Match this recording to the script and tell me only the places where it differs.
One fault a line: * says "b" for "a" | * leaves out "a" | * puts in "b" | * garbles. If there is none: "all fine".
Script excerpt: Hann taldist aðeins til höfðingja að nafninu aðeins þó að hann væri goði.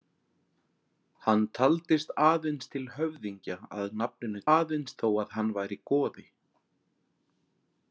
all fine